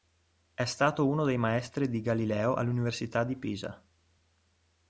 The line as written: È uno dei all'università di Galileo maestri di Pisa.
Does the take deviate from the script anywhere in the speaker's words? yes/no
yes